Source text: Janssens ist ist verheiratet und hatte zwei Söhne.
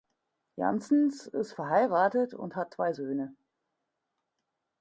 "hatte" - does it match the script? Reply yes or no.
no